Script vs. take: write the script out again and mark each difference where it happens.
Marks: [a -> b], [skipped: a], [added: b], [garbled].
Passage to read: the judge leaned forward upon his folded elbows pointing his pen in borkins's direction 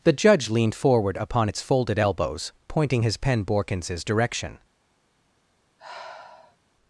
the judge leaned forward upon [his -> its] folded elbows pointing his pen [skipped: in] borkins's direction